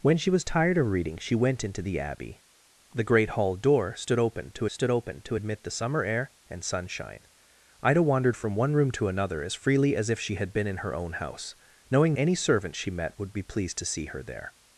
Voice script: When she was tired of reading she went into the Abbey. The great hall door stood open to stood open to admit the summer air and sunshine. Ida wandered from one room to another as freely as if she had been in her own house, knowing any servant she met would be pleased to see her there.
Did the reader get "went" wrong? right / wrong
right